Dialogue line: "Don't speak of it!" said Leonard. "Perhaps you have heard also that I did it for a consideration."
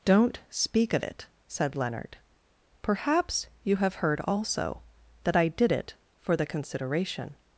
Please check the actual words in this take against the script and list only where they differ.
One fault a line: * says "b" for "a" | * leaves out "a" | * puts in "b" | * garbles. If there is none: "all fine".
* says "the" for "a"